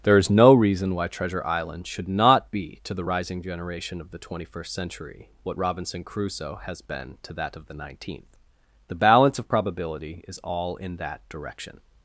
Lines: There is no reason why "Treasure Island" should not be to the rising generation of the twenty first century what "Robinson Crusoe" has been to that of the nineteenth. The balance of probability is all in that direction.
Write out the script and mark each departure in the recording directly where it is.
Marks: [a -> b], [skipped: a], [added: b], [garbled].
There is no reason why "Treasure Island" should not be to the rising generation of the twenty first century what "Robinson Crusoe" has been to that of the nineteenth. The balance of probability is all in that direction.